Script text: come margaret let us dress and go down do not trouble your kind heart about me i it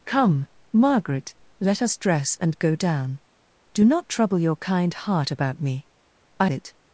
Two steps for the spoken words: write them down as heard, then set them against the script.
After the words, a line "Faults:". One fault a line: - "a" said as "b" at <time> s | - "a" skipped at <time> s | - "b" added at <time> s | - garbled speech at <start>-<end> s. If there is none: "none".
come margaret let us dress and go down do not trouble your kind heart about me i it
Faults:
none